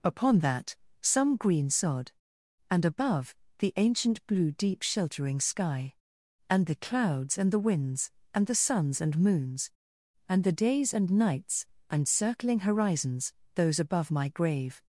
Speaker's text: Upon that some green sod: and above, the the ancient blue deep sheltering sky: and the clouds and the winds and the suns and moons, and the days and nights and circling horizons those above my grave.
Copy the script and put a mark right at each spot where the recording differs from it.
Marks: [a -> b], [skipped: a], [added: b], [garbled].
Upon that some green sod: and above, the [skipped: the] ancient blue deep sheltering sky: and the clouds and the winds and the suns and moons, and the days and nights and circling horizons those above my grave.